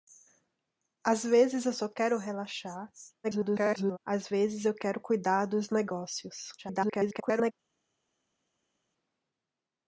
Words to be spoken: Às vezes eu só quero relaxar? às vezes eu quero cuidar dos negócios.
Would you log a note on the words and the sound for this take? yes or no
yes